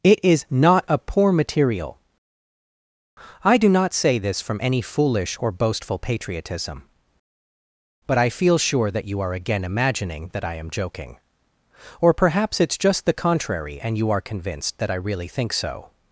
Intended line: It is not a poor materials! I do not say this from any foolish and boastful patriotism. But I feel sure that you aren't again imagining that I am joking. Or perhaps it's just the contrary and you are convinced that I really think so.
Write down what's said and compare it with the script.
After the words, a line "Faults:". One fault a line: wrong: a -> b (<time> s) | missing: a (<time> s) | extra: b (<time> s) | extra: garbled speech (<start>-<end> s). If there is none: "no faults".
It is not a poor material! I do not say this from any foolish or boastful patriotism. But I feel sure that you are again imagining that I am joking. Or perhaps it's just the contrary and you are convinced that I really think so.
Faults:
wrong: materials -> material (1.3 s)
wrong: and -> or (5.4 s)
wrong: aren't -> are (9.2 s)